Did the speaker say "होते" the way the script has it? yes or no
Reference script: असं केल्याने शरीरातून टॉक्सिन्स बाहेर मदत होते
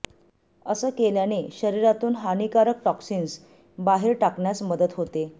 yes